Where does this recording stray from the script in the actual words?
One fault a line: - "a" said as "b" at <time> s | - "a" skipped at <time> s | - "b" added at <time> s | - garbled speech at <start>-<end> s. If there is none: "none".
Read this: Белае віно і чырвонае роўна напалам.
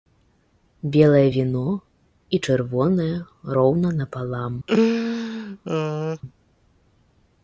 none